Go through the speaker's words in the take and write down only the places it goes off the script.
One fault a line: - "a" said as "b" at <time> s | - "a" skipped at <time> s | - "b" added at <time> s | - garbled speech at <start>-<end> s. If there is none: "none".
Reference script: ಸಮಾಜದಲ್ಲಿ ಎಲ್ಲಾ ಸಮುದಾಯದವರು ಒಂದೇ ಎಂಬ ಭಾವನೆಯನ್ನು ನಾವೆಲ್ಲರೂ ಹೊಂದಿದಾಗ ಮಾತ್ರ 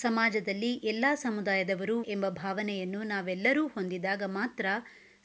- "ಒಂದೇ" skipped at 1.9 s